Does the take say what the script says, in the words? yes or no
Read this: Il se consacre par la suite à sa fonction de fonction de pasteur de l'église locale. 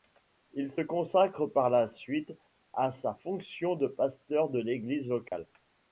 no